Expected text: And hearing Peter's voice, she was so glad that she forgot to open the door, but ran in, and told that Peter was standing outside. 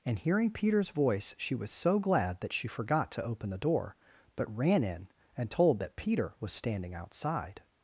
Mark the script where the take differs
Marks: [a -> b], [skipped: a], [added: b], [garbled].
And hearing Peter's voice, she was so glad that she forgot to open the door, but ran in, and told that Peter was standing outside.